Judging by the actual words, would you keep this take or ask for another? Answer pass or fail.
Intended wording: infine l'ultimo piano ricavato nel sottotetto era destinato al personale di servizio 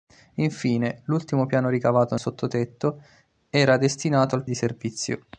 fail